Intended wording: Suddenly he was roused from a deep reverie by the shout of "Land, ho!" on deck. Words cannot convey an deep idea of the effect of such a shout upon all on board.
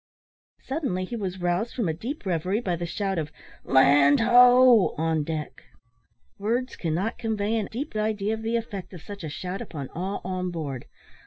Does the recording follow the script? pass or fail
pass